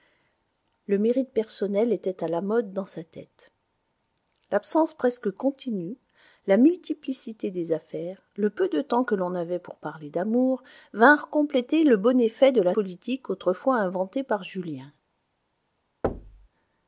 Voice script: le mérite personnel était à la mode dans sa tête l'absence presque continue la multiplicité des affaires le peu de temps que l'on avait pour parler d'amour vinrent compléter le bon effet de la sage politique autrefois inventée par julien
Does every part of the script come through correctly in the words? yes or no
no